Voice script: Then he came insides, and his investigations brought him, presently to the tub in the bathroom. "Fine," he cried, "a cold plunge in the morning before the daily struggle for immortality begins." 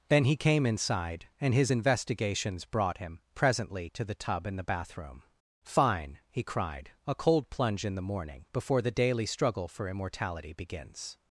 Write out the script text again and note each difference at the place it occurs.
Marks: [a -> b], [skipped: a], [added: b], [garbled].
Then he came [insides, -> inside] and his investigations brought him, presently to the tub in the bathroom. "Fine," he cried, "a cold plunge in the morning before the daily struggle for immortality begins."